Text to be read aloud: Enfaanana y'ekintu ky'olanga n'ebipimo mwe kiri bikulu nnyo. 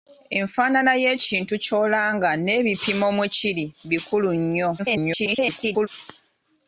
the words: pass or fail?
fail